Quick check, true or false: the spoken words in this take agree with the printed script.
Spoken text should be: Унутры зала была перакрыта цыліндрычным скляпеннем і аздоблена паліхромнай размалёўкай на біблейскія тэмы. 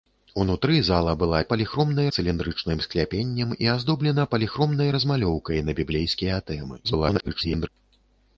false